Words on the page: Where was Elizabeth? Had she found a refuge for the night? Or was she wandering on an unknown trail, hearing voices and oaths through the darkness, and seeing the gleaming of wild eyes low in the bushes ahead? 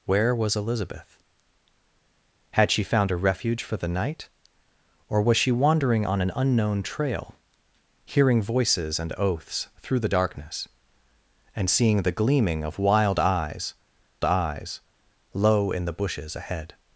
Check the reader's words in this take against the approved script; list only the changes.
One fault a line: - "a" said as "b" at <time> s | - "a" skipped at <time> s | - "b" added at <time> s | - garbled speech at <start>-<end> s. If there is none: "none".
- "eyes" added at 14.2 s